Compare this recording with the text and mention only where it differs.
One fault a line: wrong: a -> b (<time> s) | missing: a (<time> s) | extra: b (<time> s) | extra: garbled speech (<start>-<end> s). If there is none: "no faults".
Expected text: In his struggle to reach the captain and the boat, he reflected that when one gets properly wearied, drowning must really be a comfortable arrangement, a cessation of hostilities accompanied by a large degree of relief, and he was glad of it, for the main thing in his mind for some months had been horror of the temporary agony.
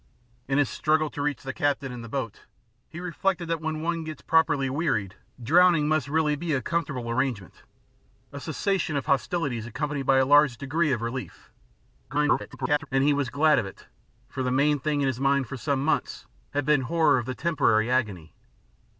extra: garbled speech (12.1-12.9 s)